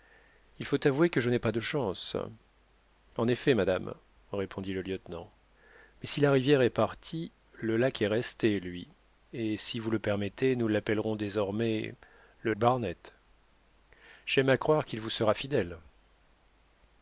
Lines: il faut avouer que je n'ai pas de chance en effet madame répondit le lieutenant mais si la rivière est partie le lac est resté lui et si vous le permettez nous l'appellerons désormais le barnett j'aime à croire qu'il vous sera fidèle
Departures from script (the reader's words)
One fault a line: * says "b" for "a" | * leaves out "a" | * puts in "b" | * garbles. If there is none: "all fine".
all fine